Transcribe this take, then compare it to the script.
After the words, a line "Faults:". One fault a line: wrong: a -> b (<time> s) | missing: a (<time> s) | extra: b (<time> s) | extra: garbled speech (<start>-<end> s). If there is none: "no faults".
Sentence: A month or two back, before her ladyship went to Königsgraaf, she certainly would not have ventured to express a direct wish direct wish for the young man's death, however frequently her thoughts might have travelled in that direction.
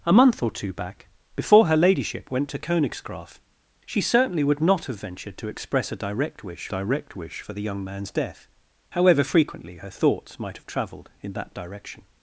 A month or two back, before her ladyship went to Königsgraaf, she certainly would not have ventured to express a direct wish direct wish for the young man's death, however frequently her thoughts might have travelled in that direction.
Faults:
no faults